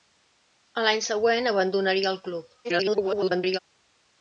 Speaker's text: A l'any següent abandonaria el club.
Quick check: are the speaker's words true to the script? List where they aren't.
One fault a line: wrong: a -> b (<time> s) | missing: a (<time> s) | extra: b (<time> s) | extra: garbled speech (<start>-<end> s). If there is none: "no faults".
extra: garbled speech (2.6-3.6 s)